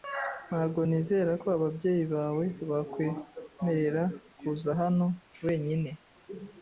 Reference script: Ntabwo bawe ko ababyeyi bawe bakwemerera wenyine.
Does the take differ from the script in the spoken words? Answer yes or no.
yes